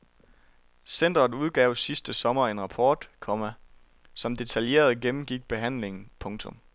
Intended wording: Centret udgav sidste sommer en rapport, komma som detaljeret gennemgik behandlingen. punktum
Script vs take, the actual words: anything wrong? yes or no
no